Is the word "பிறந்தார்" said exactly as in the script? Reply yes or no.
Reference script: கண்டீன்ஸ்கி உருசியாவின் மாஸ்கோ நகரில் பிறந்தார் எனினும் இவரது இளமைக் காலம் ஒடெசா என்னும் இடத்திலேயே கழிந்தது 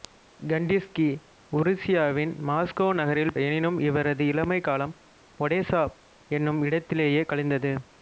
no